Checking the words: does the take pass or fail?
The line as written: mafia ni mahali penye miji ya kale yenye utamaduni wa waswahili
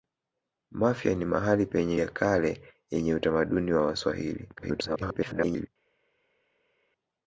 fail